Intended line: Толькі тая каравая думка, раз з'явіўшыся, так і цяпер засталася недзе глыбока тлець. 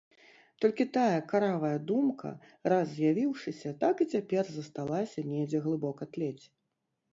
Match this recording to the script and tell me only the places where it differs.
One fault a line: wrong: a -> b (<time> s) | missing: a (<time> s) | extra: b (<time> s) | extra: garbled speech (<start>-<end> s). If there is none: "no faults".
no faults